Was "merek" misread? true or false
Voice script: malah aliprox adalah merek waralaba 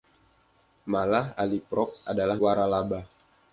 true